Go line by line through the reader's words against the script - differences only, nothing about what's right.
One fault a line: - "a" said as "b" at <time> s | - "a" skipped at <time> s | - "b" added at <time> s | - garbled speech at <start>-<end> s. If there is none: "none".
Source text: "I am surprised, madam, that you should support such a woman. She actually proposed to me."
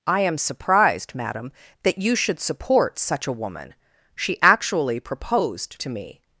none